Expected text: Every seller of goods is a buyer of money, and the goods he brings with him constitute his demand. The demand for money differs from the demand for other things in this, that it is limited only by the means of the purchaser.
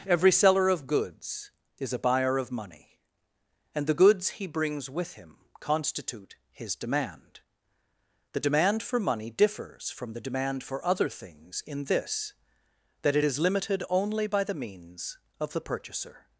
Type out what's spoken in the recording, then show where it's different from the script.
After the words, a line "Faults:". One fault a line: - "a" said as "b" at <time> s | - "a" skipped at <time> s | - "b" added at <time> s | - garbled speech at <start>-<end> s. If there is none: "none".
Every seller of goods is a buyer of money, and the goods he brings with him constitute his demand. The demand for money differs from the demand for other things in this, that it is limited only by the means of the purchaser.
Faults:
none